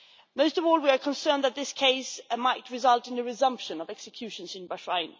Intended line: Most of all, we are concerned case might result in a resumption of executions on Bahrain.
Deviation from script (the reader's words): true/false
true